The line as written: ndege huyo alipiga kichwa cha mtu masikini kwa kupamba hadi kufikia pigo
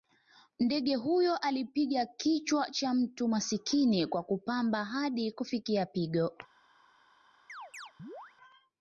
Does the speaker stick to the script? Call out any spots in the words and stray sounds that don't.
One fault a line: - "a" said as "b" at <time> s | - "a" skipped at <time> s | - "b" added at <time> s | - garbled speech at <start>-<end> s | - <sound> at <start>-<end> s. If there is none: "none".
- chirp at 7.5-8.3 s